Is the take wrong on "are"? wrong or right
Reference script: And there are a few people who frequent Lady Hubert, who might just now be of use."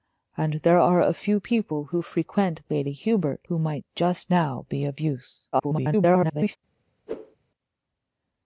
right